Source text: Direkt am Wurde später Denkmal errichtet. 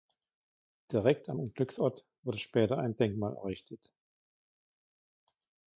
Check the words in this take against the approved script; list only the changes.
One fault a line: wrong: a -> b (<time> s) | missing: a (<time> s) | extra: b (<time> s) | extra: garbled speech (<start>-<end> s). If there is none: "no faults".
extra: Unglücksort (1.4 s)
extra: ein (2.8 s)